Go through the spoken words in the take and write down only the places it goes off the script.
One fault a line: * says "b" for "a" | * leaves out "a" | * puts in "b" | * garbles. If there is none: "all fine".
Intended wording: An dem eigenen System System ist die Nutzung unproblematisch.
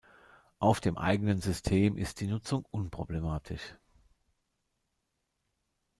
* says "Auf" for "An"
* leaves out "System"